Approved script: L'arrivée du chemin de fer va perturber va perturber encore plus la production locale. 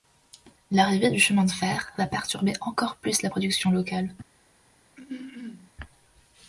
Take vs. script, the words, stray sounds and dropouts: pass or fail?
fail